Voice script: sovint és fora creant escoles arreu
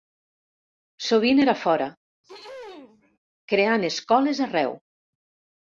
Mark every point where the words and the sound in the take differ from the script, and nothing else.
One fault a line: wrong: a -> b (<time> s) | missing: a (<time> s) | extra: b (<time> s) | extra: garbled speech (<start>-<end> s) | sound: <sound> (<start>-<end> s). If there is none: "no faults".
wrong: és -> era (1.4 s)
sound: throat clearing (2.2-3.2 s)